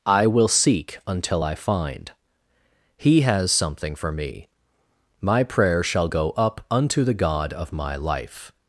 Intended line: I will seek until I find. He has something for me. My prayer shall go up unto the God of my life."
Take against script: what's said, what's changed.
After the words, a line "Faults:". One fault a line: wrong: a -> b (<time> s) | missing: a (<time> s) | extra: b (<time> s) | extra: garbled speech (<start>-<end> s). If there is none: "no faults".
I will seek until I find. He has something for me. My prayer shall go up unto the God of my life."
Faults:
no faults